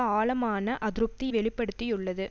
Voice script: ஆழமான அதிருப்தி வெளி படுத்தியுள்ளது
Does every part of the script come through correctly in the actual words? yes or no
yes